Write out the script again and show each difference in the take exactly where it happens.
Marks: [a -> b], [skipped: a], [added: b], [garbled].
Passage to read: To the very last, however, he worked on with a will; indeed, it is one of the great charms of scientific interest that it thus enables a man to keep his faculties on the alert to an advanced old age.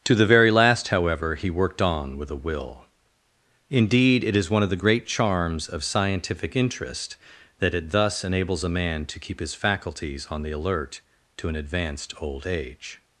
To the very last, however, he worked on with a will; indeed, it is one of the great charms of scientific interest that it thus enables a man to keep his faculties on the alert to an advanced old age.